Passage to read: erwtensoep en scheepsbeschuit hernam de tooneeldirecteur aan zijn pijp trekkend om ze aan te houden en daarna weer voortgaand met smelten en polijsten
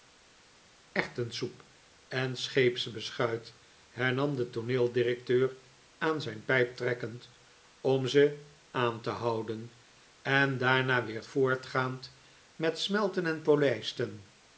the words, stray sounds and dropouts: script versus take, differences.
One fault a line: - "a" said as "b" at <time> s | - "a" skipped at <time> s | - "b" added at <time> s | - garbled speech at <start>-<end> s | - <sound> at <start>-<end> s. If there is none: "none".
none